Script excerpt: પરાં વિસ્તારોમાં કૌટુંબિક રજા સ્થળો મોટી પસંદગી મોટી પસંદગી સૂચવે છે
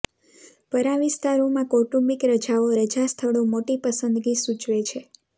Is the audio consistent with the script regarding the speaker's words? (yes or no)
no